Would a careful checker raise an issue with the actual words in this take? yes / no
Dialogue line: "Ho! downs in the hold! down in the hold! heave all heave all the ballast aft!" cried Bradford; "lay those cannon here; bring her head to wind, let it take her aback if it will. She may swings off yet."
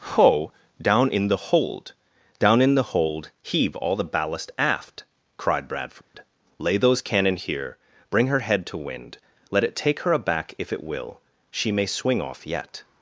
yes